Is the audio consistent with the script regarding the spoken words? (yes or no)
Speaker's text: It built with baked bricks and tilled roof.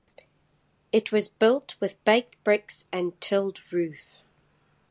no